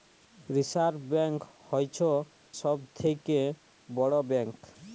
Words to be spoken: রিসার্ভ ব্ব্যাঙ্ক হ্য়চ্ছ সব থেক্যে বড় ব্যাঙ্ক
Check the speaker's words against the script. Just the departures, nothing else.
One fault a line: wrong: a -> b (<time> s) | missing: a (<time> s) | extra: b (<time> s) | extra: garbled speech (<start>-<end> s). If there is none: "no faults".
no faults